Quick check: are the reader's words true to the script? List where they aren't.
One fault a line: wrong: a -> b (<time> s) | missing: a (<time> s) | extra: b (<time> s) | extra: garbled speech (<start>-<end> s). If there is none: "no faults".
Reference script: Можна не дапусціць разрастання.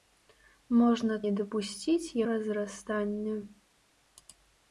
no faults